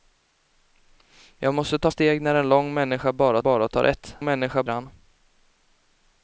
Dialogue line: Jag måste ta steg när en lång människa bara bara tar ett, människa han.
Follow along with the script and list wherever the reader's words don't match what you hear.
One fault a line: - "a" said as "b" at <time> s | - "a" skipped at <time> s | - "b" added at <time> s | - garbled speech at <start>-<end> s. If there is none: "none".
none